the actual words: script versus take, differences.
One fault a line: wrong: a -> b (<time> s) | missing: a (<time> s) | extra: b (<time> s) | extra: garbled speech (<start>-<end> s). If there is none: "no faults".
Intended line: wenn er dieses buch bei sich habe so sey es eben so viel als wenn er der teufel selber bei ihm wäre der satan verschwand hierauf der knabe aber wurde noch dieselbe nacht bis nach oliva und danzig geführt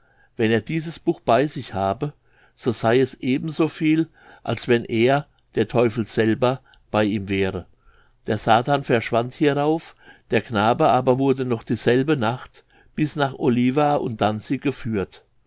no faults